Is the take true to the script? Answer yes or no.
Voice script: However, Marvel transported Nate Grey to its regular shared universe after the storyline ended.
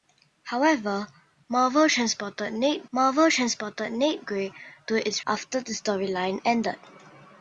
no